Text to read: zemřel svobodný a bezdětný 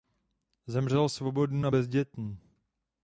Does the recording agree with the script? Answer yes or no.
yes